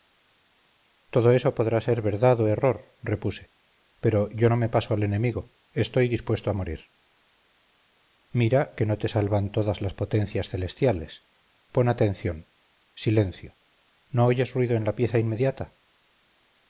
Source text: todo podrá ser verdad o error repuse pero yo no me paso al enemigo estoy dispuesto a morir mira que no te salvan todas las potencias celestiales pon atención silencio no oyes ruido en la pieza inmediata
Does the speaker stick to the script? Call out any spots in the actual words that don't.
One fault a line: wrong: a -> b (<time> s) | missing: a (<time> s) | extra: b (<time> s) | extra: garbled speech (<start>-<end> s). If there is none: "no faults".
extra: eso (1.3 s)